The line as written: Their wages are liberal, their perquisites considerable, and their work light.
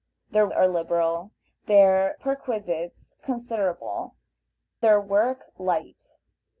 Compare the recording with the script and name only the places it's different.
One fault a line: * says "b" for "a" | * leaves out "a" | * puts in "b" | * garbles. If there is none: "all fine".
* leaves out "wages"
* leaves out "and"